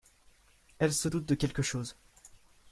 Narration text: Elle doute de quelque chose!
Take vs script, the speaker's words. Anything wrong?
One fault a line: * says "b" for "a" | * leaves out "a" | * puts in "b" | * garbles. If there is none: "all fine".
* puts in "se"